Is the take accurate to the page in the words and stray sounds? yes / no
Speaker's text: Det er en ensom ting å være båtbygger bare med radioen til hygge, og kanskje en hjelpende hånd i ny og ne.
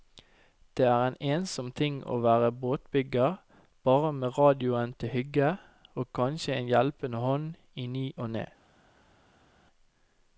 yes